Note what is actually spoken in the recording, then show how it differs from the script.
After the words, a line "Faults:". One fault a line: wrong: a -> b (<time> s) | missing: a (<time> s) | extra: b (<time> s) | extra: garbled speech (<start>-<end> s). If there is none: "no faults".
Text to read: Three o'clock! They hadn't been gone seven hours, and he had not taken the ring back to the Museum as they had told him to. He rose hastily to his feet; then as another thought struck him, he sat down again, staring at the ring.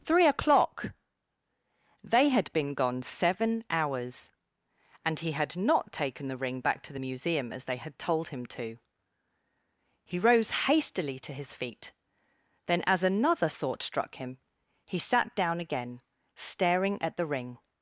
Three o'clock! They had been gone seven hours, and he had not taken the ring back to the Museum as they had told him to. He rose hastily to his feet; then as another thought struck him, he sat down again, staring at the ring.
Faults:
wrong: hadn't -> had (2.3 s)